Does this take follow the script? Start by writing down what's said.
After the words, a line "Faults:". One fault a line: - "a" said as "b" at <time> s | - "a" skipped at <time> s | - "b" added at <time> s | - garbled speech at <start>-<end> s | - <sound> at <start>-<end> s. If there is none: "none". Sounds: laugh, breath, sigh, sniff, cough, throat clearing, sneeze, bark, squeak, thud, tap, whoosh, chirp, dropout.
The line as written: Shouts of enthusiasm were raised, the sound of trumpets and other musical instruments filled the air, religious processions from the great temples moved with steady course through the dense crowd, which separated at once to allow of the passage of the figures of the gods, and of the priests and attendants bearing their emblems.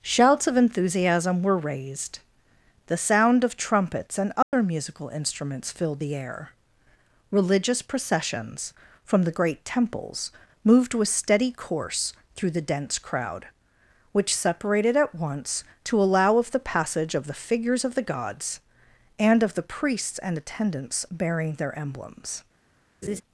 Shouts of enthusiasm were raised, the sound of trumpets and other musical instruments filled the air, religious processions from the great temples moved with steady course through the dense crowd, which separated at once to allow of the passage of the figures of the gods, and of the priests and attendants bearing their emblems.
Faults:
- dropout at 4.4-4.5 s
- laugh at 23.0-23.2 s